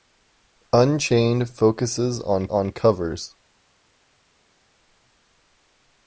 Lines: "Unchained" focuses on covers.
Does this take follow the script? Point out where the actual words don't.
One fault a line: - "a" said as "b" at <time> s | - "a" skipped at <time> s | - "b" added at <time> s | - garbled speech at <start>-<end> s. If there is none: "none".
- "on" added at 2.5 s